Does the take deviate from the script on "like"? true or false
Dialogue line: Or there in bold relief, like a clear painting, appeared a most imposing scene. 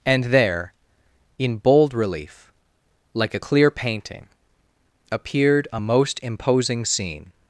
false